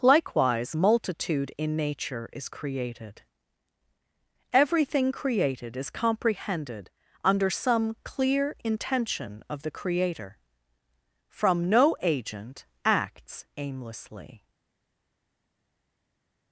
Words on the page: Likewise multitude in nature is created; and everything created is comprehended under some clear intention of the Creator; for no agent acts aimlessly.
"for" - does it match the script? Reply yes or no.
no